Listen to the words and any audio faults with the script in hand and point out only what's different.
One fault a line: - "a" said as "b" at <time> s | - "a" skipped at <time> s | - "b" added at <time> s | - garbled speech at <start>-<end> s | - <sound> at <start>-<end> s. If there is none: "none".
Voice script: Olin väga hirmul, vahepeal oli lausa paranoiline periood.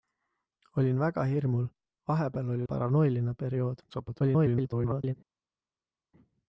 - "lausa" skipped at 2.6 s
- garbled speech at 3.9-5.1 s